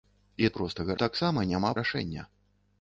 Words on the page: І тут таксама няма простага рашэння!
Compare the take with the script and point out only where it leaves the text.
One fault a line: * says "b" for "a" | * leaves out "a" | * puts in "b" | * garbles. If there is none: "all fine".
* says "простага" for "тут"
* leaves out "простага"